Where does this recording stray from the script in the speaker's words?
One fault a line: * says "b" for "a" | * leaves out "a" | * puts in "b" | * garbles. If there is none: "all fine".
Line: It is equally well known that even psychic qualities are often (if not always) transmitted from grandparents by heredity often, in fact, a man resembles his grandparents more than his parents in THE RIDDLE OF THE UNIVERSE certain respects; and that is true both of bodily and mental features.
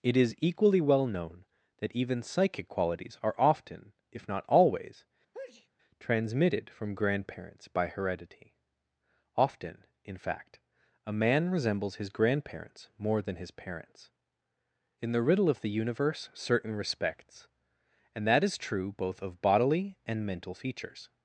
all fine